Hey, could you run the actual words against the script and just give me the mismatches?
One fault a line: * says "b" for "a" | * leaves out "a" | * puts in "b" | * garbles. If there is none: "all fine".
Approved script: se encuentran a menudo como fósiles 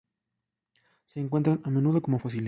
all fine